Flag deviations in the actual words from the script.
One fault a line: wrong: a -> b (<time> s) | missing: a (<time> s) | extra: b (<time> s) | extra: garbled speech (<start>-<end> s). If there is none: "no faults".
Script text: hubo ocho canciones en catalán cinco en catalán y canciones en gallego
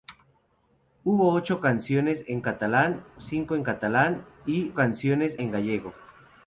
no faults